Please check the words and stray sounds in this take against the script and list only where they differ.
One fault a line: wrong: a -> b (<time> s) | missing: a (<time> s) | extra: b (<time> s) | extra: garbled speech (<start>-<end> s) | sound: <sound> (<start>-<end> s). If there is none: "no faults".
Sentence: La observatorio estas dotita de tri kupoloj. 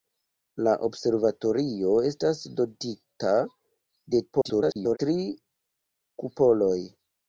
extra: garbled speech (4.3-5.0 s)